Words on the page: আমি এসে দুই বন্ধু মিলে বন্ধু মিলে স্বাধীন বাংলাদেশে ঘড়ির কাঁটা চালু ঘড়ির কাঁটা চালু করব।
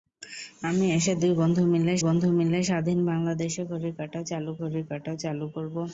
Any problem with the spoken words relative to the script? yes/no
no